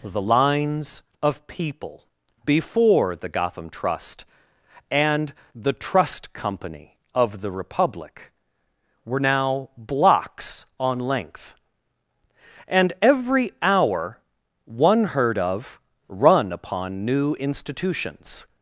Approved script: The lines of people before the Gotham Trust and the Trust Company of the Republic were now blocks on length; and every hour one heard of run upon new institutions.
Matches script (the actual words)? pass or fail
pass